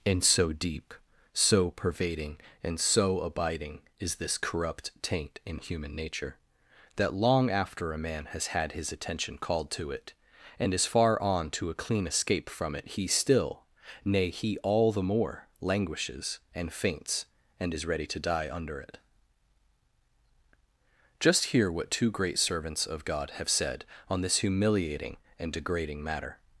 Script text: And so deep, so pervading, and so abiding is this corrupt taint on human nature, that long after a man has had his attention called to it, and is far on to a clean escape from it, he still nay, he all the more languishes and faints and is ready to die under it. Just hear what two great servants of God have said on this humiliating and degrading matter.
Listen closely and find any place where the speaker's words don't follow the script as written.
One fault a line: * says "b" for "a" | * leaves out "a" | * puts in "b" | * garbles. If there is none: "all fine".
* says "in" for "on"